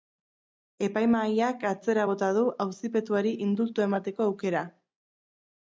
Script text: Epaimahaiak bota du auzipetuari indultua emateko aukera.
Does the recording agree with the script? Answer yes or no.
no